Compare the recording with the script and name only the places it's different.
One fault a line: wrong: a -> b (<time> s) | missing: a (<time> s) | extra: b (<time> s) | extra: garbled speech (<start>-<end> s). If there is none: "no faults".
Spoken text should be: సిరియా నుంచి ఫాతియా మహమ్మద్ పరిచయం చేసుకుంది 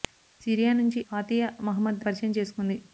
no faults